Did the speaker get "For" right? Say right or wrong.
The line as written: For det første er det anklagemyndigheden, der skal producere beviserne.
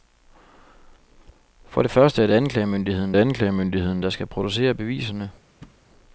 right